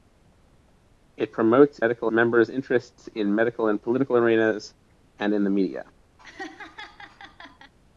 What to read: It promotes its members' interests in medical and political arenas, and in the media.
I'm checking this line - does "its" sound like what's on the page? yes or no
no